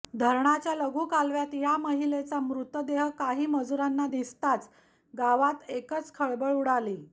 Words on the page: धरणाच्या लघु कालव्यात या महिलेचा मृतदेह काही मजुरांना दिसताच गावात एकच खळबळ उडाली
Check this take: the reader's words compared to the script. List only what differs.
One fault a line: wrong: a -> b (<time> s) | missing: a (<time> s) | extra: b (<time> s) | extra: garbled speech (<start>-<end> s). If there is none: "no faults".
no faults